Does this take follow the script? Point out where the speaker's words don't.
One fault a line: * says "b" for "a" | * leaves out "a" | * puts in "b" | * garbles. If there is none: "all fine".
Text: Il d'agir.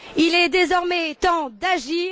* puts in "est désormais temps"